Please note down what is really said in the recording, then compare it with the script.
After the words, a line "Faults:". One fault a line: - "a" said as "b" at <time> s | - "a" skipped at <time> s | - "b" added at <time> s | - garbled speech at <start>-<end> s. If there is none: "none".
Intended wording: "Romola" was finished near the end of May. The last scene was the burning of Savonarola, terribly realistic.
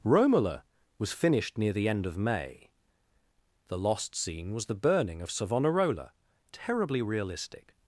"Romola" was finished near the end of May. The lost scene was the burning of Savonarola, terribly realistic.
Faults:
- "last" said as "lost" at 3.8 s